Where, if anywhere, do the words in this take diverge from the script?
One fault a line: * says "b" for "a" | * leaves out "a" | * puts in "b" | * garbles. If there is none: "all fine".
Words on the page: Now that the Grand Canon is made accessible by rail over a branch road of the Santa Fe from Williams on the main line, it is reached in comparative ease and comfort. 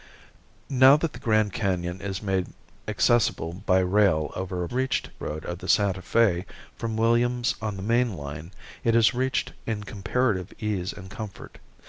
* says "reached" for "branch"